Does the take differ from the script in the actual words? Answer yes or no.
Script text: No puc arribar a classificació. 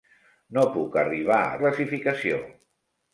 no